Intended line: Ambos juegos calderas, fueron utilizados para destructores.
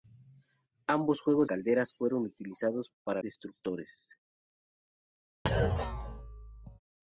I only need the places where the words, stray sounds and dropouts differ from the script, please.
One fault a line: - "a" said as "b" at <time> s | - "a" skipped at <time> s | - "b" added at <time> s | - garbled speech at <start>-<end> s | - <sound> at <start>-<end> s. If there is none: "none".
- thud at 5.4-6.8 s